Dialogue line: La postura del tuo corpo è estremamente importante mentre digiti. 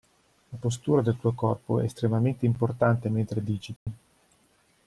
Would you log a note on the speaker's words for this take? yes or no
no